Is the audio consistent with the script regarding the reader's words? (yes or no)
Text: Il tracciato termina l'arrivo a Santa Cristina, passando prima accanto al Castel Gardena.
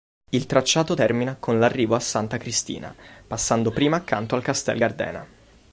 no